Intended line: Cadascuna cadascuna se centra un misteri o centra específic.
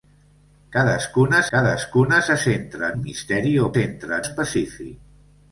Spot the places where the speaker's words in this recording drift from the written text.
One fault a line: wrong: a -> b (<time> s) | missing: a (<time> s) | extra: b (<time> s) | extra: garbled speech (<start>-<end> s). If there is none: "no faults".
no faults